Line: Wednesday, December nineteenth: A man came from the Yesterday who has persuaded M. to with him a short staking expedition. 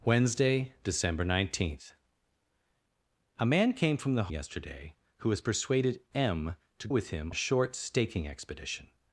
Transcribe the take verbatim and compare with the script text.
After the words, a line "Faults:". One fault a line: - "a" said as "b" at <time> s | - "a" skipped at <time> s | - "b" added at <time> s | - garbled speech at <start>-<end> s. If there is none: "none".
Wednesday, December nineteenth: A man came from the Yesterday who has persuaded M. to with him a short staking expedition.
Faults:
none